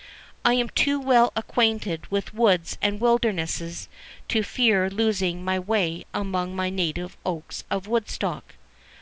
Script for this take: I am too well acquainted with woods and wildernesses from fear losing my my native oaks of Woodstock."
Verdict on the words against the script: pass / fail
fail